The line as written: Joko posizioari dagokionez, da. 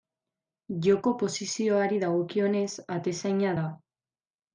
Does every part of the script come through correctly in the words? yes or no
no